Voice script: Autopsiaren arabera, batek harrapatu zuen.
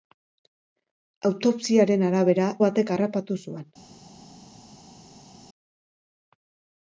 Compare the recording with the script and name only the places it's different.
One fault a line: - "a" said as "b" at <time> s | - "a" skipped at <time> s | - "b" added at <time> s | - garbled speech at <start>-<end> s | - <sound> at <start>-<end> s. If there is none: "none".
none